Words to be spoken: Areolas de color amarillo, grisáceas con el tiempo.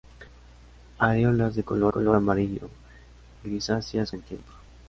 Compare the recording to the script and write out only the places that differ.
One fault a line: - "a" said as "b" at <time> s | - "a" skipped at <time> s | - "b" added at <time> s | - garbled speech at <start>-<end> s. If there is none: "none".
- "color" added at 1.9 s
- "con" skipped at 4.1 s